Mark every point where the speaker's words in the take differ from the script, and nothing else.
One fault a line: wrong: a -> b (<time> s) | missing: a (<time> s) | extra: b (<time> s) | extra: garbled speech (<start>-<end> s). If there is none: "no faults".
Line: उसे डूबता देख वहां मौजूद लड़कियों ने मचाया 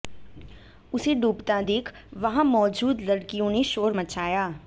extra: शोर (3.7 s)